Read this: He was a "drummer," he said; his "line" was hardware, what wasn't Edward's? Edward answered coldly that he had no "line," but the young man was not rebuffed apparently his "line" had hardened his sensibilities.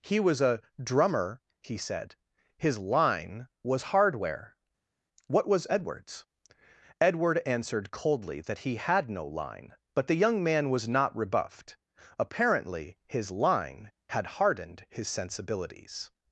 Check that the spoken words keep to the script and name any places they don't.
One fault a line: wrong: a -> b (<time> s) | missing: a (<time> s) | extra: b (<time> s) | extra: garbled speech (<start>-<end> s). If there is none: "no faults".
wrong: wasn't -> was (5.5 s)